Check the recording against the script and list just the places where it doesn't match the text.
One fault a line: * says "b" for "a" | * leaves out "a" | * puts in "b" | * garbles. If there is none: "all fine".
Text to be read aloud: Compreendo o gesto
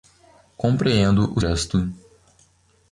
all fine